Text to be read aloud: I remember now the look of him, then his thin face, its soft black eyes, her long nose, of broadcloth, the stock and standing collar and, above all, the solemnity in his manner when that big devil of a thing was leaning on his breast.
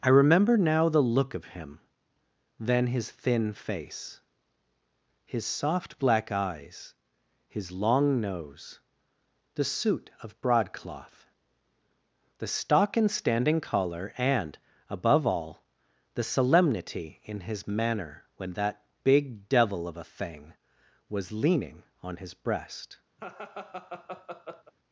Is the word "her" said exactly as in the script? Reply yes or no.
no